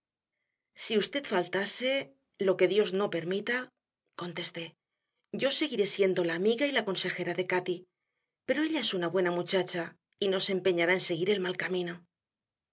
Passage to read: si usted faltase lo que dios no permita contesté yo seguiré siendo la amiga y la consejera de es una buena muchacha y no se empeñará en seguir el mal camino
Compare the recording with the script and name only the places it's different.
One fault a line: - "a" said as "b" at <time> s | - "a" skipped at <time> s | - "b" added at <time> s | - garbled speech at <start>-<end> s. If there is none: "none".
- "cati pero ella" added at 7.5 s